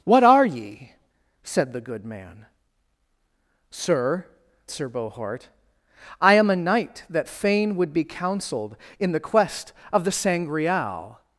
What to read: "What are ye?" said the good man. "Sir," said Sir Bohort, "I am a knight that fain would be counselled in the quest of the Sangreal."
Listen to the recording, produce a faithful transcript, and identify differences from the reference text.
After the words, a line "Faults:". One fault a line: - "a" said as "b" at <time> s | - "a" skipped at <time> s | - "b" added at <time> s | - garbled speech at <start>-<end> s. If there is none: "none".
"What are ye?" said the good man. "Sir," Sir Bohort, "I am a knight that fain would be counselled in the quest of the Sangreal."
Faults:
- "said" skipped at 4.3 s